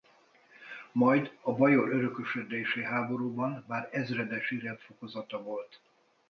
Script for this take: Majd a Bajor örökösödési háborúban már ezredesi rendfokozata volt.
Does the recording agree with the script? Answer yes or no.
yes